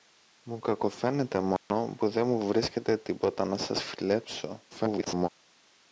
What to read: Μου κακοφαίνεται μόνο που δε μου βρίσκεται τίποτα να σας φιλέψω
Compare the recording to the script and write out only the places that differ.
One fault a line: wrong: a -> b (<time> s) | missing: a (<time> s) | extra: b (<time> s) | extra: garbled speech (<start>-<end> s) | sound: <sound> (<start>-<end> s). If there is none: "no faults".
sound: dropout (1.6-1.7 s)
extra: garbled speech (4.7-5.3 s)